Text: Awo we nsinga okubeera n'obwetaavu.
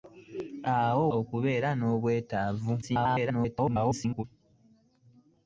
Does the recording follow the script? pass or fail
fail